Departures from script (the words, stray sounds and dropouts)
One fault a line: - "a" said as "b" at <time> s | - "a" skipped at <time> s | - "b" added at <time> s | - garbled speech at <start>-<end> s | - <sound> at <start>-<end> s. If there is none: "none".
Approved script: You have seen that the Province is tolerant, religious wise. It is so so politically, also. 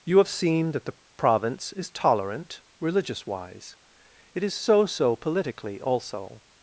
none